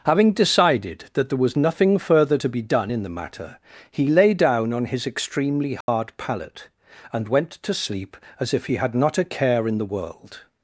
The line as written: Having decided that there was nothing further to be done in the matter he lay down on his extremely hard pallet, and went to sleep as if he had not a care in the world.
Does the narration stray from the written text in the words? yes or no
no